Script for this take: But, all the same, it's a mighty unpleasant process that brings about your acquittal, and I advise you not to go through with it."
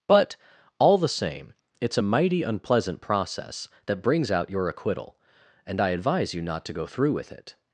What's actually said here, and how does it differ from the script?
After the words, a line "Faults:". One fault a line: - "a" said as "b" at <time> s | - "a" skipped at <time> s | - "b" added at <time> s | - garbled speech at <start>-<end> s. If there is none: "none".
But, all the same, it's a mighty unpleasant process that brings out your acquittal, and I advise you not to go through with it."
Faults:
- "about" said as "out" at 4.3 s